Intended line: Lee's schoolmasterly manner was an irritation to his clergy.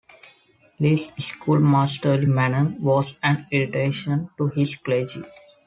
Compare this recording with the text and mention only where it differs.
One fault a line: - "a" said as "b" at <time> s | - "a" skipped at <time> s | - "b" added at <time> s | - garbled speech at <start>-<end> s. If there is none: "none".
none